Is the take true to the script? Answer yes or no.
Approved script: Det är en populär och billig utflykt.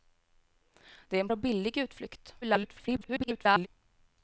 no